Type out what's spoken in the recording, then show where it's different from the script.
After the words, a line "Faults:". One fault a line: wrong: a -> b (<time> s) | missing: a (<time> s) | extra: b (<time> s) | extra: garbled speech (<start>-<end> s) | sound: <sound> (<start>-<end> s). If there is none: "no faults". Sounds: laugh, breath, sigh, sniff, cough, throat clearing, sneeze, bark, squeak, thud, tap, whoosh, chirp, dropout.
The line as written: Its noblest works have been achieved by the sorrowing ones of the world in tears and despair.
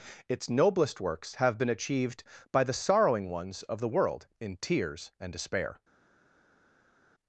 Its noblest works have been achieved by the sorrowing ones of the world in tears and despair.
Faults:
no faults